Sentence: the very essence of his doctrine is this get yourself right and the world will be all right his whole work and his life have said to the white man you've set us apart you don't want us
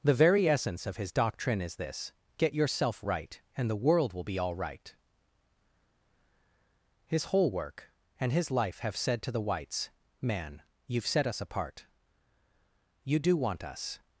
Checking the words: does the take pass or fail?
fail